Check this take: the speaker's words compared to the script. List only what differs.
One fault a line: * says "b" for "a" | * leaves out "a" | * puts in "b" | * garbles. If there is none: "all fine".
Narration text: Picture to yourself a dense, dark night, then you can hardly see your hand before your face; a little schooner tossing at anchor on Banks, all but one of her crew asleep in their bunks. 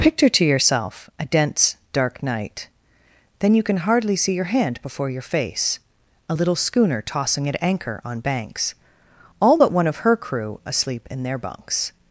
all fine